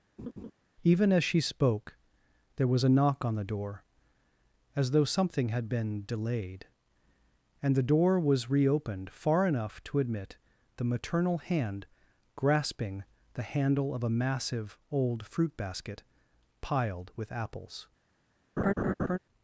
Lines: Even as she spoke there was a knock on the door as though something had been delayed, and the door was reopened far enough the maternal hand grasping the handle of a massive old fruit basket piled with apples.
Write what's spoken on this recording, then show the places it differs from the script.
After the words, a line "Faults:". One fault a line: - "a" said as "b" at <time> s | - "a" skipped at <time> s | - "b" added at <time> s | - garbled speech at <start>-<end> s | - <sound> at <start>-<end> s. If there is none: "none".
Even as she spoke there was a knock on the door as though something had been delayed, and the door was reopened far enough to admit the maternal hand grasping the handle of a massive old fruit basket piled with apples.
Faults:
- laugh at 0.2-0.5 s
- "to admit" added at 9.8 s
- laugh at 18.6-19.2 s